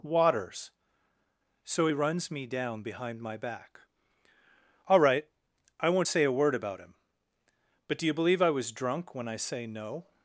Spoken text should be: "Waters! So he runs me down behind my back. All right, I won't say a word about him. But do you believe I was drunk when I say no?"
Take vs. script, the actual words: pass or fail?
pass